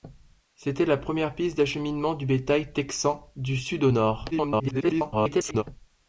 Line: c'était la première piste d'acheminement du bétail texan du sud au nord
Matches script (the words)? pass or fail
fail